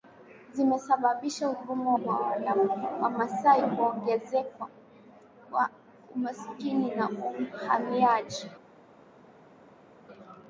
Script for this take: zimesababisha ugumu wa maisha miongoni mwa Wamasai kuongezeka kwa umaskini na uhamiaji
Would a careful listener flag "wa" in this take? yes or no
yes